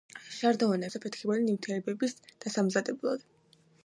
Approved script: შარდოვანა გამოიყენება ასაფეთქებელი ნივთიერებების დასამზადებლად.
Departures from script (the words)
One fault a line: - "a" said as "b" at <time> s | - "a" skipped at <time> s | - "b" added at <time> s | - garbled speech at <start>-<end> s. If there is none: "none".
- "გამოიყენება" skipped at 0.9 s